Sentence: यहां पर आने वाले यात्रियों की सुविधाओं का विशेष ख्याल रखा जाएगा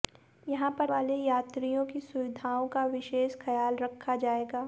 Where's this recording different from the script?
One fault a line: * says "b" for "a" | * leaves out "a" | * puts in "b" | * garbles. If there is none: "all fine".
* leaves out "आने"